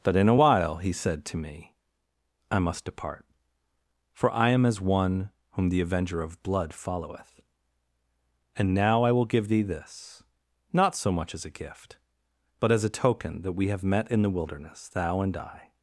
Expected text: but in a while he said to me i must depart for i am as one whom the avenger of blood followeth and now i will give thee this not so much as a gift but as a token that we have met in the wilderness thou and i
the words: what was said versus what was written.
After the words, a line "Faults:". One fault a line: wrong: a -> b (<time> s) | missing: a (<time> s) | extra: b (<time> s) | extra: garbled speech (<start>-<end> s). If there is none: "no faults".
but in a while he said to me i must depart for i am as one whom the avenger of blood followeth and now i will give thee this not so much as a gift but as a token that we have met in the wilderness thou and i
Faults:
no faults